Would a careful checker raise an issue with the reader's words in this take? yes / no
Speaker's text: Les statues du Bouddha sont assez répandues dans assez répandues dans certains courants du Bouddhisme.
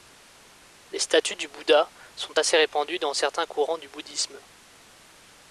yes